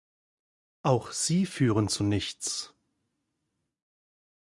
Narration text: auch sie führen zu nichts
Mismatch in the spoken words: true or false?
false